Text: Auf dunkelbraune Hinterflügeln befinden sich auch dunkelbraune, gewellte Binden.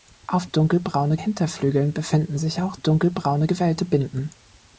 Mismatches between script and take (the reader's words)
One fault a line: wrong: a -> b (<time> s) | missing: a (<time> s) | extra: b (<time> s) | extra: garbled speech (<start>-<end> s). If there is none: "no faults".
no faults